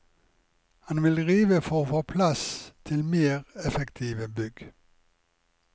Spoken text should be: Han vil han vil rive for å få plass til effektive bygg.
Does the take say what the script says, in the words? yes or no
no